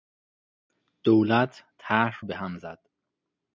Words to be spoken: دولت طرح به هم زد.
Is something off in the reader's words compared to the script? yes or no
no